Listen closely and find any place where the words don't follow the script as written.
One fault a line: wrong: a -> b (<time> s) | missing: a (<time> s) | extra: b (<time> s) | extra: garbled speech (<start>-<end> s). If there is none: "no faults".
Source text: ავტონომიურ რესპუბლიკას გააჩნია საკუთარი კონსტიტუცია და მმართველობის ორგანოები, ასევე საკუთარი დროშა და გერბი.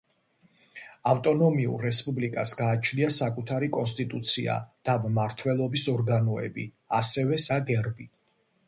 missing: საკუთარი დროშა (7.4 s)